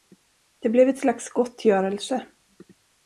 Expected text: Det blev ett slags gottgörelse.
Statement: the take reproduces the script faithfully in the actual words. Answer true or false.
true